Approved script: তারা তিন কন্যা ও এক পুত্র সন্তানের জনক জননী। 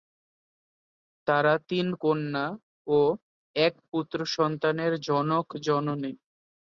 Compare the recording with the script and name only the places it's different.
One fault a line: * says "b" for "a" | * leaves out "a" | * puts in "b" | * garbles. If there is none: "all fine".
all fine